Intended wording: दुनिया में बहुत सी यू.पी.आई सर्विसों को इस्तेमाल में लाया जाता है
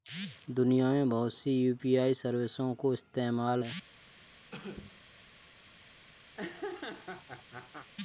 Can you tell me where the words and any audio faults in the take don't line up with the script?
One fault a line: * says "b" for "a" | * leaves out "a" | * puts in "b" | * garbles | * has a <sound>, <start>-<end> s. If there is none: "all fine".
* leaves out "में लाया जाता"
* has a cough, 4.5-5.0 s
* has a laugh, 6.3-7.9 s